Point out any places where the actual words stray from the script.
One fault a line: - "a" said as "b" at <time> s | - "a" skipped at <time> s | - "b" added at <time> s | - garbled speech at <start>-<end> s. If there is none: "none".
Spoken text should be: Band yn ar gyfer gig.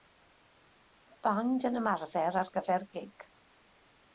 - "ymarfer" added at 1.8 s